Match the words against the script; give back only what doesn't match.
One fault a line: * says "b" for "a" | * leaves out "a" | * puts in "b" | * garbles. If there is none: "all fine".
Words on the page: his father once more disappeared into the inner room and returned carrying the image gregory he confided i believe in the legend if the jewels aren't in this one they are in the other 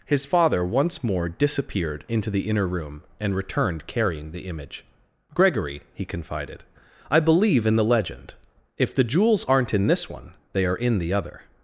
all fine